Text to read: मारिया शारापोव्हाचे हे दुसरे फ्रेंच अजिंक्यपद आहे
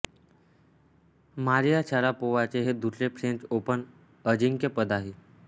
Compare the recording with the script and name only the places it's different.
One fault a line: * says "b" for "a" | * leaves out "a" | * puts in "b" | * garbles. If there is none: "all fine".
* puts in "ओपन"